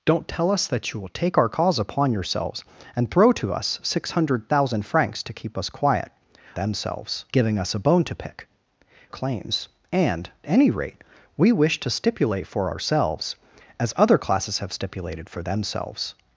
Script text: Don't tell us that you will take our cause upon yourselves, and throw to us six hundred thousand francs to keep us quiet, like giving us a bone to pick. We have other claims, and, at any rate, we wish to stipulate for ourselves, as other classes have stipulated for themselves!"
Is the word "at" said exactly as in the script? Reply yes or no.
no